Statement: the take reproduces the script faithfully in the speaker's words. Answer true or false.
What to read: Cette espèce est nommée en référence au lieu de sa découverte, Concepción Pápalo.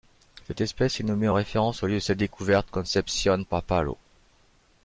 true